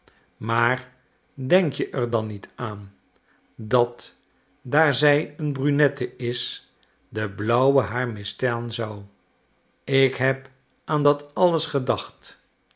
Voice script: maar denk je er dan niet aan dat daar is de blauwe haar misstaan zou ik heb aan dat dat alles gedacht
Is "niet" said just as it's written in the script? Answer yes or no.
yes